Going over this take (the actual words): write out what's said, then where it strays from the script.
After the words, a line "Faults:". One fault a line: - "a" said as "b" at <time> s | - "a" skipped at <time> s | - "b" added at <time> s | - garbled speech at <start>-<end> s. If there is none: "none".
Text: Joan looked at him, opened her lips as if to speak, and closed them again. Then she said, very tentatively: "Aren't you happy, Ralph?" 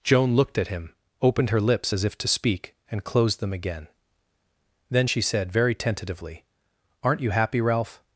Joan looked at him, opened her lips as if to speak, and closed them again. Then she said, very tentatively: "Aren't you happy, Ralph?"
Faults:
none